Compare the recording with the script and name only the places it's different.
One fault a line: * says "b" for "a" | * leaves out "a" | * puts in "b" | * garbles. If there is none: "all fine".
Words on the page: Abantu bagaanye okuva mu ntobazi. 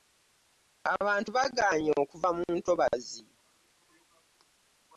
all fine